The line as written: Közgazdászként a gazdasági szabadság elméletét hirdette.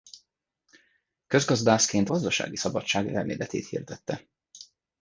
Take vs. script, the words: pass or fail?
fail